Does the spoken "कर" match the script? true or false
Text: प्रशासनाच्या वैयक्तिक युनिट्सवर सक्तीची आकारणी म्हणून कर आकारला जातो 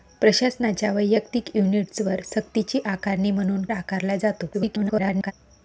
false